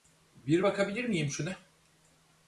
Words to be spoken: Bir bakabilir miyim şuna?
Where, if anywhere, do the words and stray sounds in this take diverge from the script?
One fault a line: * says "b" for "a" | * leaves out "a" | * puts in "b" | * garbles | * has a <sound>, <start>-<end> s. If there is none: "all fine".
all fine